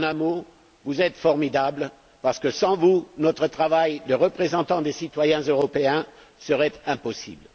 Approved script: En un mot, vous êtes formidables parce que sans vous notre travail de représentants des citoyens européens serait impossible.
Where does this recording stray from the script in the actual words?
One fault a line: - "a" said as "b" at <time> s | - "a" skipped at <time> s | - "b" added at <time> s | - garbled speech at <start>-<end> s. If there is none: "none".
none